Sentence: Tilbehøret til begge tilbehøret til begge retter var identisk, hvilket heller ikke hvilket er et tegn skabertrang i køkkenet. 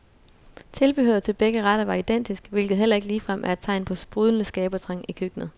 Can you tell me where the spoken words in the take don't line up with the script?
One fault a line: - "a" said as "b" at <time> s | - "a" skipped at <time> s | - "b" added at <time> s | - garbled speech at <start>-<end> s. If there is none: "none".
- "tilbehøret til begge" skipped at 1.6 s
- "hvilket" said as "ligefrem" at 3.1 s
- "på sprudlende" added at 3.9 s